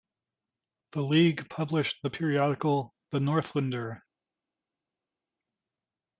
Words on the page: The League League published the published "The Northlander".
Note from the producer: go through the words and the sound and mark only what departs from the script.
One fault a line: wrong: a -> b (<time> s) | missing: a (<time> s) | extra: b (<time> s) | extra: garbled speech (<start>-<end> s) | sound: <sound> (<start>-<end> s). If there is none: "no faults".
missing: League (1.5 s)
wrong: published -> periodical (2.1 s)